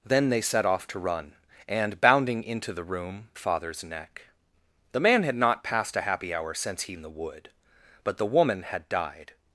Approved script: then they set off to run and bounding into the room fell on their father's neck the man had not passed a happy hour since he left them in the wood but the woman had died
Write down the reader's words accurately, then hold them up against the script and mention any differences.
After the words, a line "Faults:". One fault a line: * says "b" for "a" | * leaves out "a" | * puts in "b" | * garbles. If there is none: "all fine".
then they set off to run and bounding into the room father's neck the man had not passed a happy hour since he in the wood but the woman had died
Faults:
* leaves out "fell on their"
* leaves out "left them"